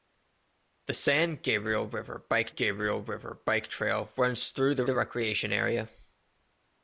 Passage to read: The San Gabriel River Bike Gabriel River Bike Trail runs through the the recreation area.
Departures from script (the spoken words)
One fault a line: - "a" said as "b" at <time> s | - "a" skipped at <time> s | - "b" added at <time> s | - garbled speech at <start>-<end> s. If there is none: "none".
none